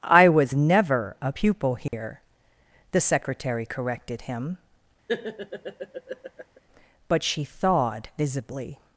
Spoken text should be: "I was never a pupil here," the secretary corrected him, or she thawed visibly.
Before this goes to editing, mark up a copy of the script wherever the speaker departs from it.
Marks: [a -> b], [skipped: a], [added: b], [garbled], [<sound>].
"I was never a pupil here," [dropout] the secretary corrected him, [laugh] [or -> but] she thawed visibly.